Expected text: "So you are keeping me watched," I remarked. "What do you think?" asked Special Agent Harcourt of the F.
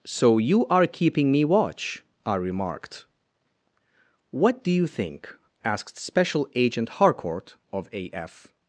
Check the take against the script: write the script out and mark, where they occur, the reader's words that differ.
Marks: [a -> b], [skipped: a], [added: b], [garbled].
"So you are keeping me [watched," -> watch] I remarked. "What do you think?" asked Special Agent Harcourt of [the -> a] F.